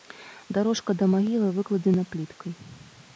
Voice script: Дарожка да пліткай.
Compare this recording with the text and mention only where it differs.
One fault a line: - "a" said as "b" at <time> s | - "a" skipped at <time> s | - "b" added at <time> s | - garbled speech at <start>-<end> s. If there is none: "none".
- "магілы выкладзена" added at 1.1 s